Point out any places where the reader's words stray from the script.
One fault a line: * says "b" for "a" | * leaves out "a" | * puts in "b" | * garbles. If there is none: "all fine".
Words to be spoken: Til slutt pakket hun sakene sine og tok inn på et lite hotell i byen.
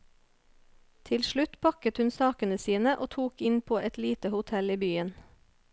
all fine